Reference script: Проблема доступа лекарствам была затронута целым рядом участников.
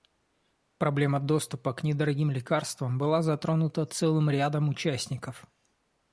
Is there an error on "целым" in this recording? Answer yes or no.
no